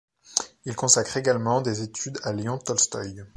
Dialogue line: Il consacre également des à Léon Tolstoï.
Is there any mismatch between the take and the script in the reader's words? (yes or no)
yes